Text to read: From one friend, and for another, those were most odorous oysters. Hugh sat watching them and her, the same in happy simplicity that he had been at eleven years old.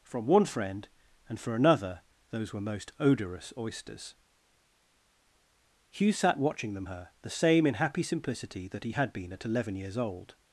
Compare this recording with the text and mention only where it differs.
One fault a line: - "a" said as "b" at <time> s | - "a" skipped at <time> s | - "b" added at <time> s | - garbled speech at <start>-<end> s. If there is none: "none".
- "and" skipped at 6.9 s